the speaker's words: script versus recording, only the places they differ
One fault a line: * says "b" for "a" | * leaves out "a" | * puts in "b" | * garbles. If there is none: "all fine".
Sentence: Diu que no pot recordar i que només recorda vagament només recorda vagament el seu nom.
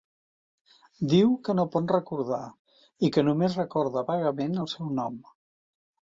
* leaves out "només recorda vagament"